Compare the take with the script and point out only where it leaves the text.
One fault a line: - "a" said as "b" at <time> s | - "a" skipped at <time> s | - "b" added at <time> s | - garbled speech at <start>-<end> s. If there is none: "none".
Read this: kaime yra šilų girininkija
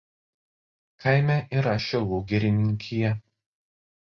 none